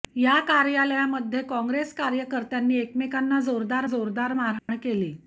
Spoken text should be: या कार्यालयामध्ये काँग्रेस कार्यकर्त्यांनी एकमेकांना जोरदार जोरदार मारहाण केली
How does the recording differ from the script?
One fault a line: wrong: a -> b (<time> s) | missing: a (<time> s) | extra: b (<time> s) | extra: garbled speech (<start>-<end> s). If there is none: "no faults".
no faults